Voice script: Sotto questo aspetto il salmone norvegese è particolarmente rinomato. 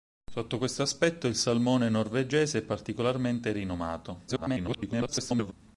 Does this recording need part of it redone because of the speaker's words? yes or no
yes